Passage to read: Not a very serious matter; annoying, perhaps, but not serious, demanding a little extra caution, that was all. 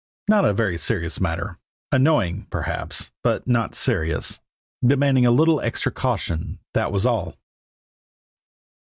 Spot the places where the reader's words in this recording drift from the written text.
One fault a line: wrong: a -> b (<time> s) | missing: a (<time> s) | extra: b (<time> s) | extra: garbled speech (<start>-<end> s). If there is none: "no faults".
no faults